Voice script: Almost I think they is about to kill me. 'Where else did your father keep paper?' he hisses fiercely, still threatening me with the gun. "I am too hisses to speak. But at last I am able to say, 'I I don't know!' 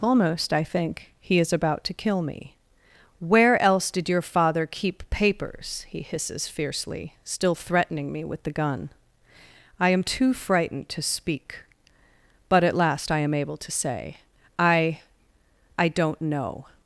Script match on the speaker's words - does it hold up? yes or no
no